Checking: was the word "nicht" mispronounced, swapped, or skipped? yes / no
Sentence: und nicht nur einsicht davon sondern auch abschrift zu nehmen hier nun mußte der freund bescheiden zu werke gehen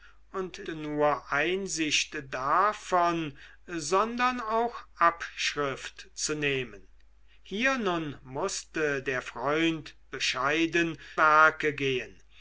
yes